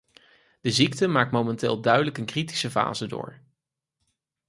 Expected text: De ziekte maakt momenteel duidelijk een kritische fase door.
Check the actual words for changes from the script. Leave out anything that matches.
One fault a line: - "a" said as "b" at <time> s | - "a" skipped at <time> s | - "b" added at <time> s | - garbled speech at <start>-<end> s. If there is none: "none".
none